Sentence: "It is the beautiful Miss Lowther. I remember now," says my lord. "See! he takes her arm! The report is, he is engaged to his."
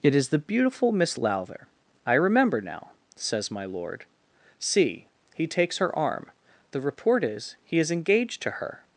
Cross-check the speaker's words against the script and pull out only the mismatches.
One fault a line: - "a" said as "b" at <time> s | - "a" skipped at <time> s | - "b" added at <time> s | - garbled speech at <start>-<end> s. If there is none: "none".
- "his" said as "her" at 8.5 s